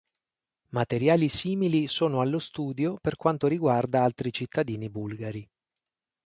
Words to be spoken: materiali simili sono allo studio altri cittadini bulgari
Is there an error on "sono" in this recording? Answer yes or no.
no